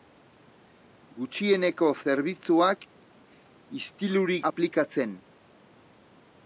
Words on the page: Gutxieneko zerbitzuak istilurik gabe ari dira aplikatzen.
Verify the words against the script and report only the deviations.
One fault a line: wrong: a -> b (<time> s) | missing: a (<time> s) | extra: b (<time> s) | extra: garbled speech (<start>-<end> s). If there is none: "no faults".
missing: gabe ari dira (4.4 s)